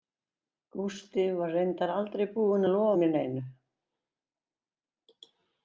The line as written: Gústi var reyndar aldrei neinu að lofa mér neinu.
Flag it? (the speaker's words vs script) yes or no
yes